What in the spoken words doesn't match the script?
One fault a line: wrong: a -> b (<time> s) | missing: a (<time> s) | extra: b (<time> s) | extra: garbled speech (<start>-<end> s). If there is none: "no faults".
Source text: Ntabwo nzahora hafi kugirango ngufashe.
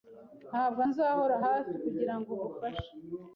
no faults